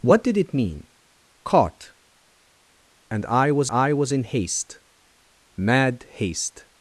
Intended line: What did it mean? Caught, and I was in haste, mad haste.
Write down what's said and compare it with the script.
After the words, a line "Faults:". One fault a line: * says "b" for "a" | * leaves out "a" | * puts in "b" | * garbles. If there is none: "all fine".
What did it mean? Caught, and I was I was in haste, mad haste.
Faults:
* puts in "I was"